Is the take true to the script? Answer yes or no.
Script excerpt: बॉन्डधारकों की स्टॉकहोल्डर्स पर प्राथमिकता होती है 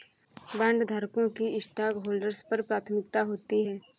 yes